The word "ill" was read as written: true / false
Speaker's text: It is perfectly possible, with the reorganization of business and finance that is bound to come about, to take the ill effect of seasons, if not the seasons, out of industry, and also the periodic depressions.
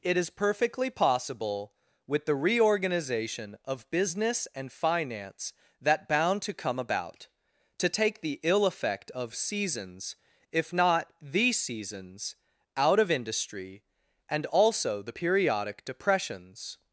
true